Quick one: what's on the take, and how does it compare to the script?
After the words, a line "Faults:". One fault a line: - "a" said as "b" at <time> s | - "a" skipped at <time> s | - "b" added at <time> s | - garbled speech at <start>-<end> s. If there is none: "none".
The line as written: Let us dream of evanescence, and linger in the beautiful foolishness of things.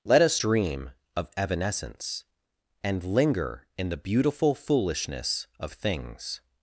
Let us dream of evanescence, and linger in the beautiful foolishness of things.
Faults:
none